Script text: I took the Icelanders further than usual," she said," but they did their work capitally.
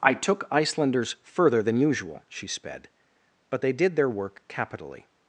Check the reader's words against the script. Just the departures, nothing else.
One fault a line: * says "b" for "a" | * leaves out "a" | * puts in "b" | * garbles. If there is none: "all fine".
* leaves out "the"
* says "sped" for "said"